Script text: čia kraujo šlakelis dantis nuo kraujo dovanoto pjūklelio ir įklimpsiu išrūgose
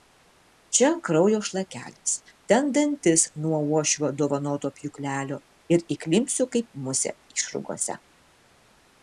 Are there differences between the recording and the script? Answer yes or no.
yes